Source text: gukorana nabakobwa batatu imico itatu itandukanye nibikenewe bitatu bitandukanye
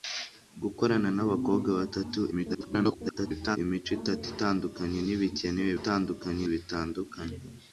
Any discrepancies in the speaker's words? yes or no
yes